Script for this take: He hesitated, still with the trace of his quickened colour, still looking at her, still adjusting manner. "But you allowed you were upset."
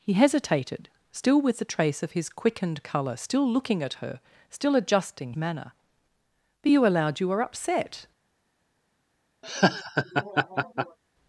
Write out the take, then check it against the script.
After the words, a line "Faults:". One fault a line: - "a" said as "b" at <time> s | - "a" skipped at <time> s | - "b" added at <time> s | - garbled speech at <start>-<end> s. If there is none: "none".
He hesitated, still with the trace of his quickened colour, still looking at her, still adjusting manner. "But you allowed you were upset."
Faults:
none